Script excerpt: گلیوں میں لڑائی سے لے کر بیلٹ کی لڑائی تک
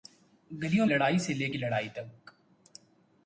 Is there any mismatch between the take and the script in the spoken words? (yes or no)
yes